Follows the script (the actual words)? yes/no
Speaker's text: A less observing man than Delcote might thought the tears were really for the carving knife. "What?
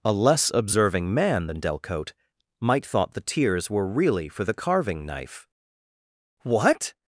yes